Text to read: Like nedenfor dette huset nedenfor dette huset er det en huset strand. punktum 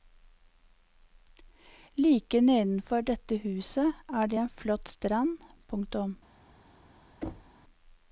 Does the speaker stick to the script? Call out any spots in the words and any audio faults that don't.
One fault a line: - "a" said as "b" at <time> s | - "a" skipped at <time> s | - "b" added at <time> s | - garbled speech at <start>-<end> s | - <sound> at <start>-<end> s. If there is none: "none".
- "nedenfor dette huset" skipped at 3.9 s
- "huset" said as "flott" at 4.5 s
- thud at 7.2-7.6 s